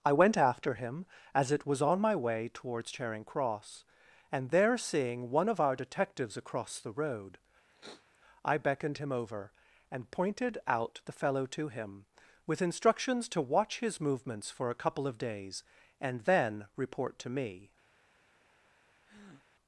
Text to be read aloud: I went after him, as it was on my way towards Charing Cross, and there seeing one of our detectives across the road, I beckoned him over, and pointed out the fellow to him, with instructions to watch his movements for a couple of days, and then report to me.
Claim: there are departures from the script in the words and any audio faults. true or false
true